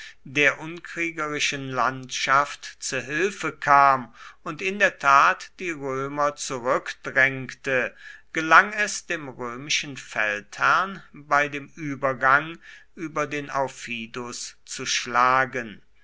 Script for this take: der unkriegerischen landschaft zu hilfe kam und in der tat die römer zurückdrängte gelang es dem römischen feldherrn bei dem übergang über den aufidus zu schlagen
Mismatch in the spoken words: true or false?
false